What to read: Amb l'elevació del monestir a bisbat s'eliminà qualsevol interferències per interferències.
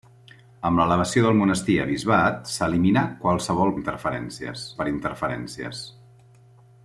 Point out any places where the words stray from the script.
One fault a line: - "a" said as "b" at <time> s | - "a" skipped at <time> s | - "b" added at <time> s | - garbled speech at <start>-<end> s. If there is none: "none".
none